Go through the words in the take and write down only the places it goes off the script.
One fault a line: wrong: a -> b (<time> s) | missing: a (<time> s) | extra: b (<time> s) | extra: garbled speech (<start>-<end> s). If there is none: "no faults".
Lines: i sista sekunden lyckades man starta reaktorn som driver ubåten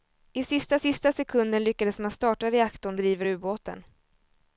extra: sista (0.8 s)
missing: som (3.0 s)